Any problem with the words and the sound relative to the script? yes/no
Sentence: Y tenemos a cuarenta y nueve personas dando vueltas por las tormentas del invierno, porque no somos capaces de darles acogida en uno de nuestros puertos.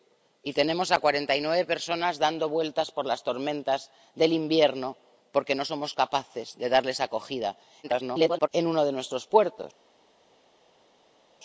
yes